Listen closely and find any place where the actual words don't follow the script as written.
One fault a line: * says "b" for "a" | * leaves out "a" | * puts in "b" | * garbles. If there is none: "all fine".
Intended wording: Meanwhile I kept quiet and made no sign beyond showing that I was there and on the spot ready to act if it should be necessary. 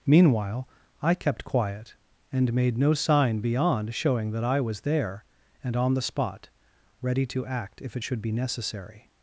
all fine